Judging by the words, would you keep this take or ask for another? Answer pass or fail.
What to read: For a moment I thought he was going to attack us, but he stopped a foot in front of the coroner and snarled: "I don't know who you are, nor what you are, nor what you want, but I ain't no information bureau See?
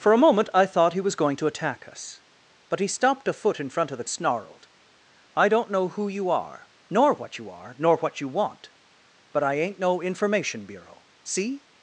fail